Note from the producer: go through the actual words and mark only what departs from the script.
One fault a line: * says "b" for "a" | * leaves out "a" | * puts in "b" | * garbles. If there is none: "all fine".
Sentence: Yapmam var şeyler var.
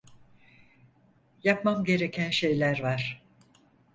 * says "gereken" for "var"